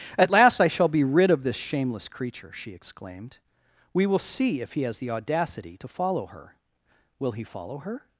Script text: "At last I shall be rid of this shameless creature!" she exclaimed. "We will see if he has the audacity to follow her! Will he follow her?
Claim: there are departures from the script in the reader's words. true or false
false